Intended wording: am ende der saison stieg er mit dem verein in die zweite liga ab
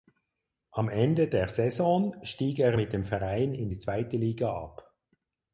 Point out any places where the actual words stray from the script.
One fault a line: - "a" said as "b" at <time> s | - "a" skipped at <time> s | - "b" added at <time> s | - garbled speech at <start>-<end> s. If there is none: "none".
none